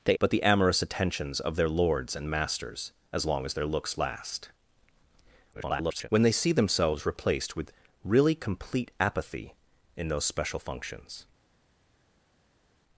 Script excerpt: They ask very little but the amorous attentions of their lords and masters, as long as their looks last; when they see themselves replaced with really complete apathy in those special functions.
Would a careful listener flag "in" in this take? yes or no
no